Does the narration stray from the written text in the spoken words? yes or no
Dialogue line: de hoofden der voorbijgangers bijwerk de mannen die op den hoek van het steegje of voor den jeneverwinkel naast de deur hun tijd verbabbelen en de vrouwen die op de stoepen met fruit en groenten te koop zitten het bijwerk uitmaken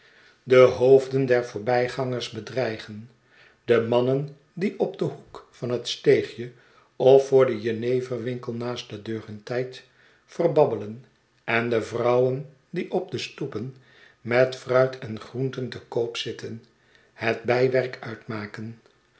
yes